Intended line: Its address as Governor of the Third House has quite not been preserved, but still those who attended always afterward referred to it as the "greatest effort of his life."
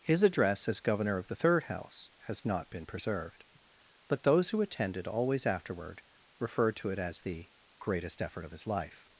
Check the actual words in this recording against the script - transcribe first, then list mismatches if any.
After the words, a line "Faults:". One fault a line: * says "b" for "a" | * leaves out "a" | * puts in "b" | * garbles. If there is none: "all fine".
His address as Governor of the Third House has not been preserved, but those who attended always afterward referred to it as the "greatest effort of his life."
Faults:
* says "His" for "Its"
* leaves out "quite"
* leaves out "still"